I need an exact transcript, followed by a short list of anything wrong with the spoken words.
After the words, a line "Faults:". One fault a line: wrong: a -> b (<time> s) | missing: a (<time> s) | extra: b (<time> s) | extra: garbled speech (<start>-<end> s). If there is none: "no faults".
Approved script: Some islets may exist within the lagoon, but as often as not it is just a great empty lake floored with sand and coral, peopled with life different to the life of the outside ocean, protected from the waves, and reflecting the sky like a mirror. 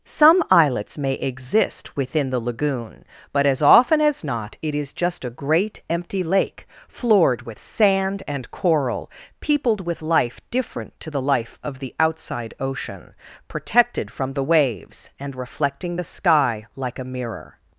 Some islets may exist within the lagoon, but as often as not it is just a great empty lake floored with sand and coral, peopled with life different to the life of the outside ocean, protected from the waves, and reflecting the sky like a mirror.
Faults:
no faults